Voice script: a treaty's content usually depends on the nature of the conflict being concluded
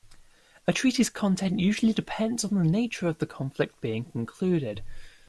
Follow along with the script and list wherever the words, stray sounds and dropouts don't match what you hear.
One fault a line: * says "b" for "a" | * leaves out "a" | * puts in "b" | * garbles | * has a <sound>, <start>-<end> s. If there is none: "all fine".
all fine